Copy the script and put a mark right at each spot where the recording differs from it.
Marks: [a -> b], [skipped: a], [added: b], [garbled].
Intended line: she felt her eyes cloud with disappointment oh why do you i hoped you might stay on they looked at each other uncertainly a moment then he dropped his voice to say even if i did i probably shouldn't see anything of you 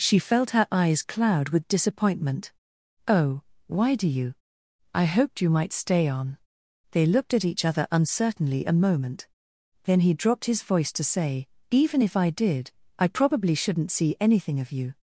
she felt her eyes cloud with disappointment oh why do you i hoped you might stay on they looked at each other uncertainly a moment then he dropped his voice to say even if i did i probably shouldn't see anything of you